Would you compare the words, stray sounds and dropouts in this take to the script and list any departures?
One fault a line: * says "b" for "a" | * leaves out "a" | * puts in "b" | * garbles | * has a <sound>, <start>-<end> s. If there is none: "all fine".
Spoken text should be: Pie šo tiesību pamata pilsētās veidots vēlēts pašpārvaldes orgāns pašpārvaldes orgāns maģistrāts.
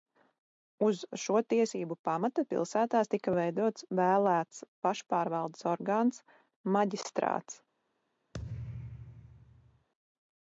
* says "Uz" for "Pie"
* puts in "tika"
* leaves out "pašpārvaldes orgāns"
* has a thud, 8.3-9.9 s